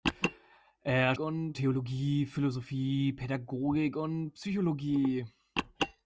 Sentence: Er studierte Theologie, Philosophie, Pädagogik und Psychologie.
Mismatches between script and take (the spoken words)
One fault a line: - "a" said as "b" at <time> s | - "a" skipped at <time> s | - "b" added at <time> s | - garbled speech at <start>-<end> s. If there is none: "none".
- "studierte" said as "und" at 1.2 s